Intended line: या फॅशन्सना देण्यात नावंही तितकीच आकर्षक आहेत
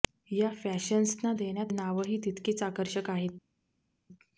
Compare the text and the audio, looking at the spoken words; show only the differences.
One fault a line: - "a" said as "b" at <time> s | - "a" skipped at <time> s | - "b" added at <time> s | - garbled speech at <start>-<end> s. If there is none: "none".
none